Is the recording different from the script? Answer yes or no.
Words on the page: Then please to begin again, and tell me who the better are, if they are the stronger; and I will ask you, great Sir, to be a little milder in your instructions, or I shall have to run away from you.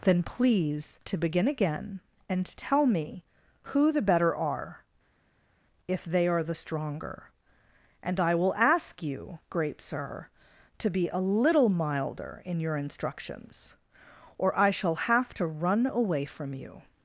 no